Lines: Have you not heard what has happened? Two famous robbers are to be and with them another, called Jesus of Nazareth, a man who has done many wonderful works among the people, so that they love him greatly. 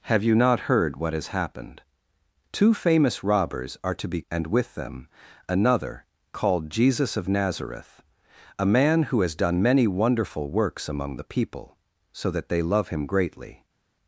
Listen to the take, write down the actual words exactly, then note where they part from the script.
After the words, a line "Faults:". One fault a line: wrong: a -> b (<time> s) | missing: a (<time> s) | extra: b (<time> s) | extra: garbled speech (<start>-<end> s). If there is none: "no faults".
Have you not heard what has happened? Two famous robbers are to be and with them another, called Jesus of Nazareth, a man who has done many wonderful works among the people, so that they love him greatly.
Faults:
no faults